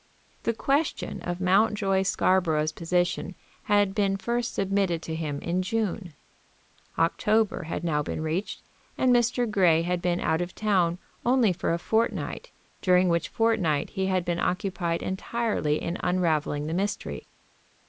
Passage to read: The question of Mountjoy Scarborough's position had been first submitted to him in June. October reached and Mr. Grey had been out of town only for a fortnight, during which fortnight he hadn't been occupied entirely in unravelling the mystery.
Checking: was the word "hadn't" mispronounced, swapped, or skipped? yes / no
yes